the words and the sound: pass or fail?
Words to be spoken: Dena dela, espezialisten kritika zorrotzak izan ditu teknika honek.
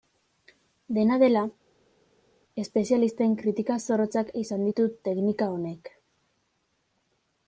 pass